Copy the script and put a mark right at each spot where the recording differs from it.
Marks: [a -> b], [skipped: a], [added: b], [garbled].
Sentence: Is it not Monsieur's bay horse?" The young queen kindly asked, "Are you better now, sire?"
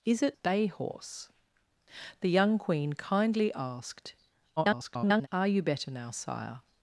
Is it [skipped: not Monsieur's] bay horse?" The young queen kindly asked, [garbled] "Are you better now, sire?"